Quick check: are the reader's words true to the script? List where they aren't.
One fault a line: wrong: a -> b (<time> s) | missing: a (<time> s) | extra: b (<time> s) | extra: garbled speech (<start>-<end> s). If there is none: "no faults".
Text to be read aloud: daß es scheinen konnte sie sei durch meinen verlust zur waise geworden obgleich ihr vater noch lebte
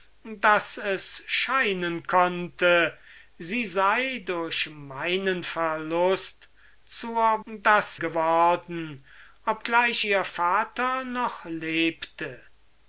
wrong: waise -> daß (7.5 s)